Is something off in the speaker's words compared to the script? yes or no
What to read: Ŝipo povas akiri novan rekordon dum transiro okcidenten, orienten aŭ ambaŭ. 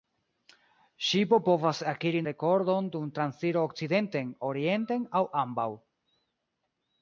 yes